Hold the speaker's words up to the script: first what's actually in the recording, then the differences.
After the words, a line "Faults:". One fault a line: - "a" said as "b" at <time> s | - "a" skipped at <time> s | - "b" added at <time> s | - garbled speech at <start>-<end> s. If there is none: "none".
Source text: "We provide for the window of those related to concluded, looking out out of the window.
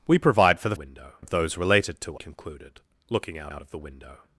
"We provide for the window of those related to concluded, looking out out of the window.
Faults:
none